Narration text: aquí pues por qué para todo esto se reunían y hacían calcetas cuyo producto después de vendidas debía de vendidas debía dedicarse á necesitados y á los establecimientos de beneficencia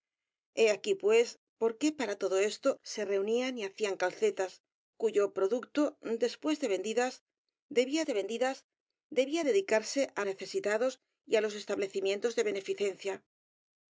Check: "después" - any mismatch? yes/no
no